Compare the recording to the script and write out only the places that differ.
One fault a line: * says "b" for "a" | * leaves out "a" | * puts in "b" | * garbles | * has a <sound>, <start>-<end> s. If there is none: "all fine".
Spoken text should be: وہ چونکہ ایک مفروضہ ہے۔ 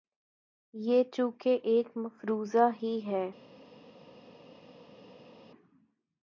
* says "یہ" for "وہ"
* puts in "ہی"